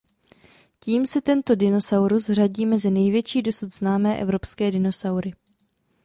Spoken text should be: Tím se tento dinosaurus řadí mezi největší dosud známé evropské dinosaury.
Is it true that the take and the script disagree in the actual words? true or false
false